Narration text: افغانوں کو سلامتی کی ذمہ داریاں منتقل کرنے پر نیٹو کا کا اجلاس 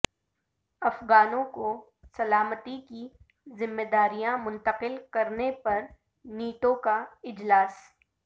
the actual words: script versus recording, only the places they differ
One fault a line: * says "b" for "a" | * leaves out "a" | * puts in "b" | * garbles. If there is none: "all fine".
* leaves out "کا"